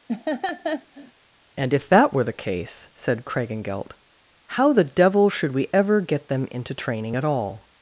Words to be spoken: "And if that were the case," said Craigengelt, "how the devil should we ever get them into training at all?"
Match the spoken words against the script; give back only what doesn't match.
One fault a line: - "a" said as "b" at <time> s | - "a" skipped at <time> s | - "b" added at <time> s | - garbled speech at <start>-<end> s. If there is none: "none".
none